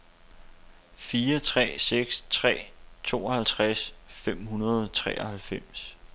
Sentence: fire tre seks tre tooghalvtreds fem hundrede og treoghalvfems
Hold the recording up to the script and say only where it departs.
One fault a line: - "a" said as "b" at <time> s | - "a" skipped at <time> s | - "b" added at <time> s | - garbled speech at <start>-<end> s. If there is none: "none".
none